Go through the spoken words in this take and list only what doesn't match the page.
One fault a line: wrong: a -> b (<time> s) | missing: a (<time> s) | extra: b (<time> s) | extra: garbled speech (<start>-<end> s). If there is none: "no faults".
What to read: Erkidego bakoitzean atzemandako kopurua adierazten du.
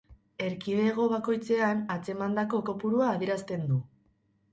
no faults